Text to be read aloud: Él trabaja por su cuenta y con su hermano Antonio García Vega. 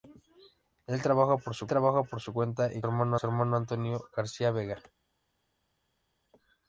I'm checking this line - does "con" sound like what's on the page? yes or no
no